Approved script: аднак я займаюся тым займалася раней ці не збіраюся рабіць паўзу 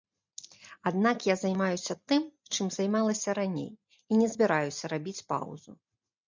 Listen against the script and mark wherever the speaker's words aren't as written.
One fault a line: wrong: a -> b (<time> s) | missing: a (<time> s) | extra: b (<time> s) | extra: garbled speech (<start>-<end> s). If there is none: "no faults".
extra: чым (2.5 s)
wrong: ці -> і (4.1 s)